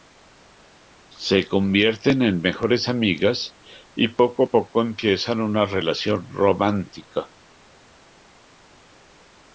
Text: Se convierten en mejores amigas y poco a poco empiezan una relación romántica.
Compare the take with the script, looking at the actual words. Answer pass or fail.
pass